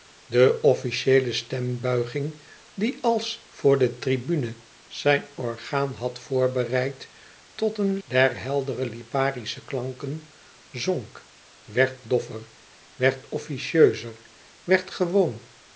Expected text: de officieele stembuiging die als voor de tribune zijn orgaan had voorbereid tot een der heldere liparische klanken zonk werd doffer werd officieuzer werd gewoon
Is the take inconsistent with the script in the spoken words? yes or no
no